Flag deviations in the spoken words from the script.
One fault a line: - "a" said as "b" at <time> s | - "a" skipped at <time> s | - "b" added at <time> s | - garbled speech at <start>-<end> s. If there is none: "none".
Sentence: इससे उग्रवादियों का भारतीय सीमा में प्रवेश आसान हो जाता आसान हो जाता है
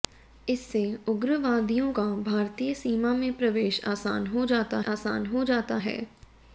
none